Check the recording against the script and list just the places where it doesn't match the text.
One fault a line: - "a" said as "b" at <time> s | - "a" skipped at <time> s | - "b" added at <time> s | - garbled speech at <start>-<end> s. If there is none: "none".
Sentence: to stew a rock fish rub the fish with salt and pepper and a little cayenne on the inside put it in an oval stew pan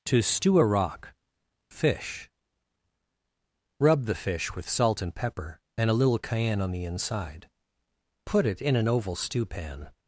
none